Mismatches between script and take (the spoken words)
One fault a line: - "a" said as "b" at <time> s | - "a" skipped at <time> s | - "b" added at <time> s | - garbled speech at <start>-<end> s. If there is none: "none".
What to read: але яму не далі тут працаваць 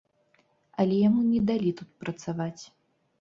none